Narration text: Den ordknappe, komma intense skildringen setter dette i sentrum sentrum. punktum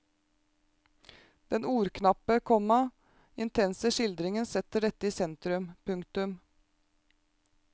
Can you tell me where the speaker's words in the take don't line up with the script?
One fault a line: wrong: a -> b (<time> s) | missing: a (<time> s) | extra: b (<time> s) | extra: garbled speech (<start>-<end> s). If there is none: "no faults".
missing: sentrum (5.7 s)